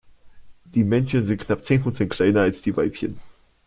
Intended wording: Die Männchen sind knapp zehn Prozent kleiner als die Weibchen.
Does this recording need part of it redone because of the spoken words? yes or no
no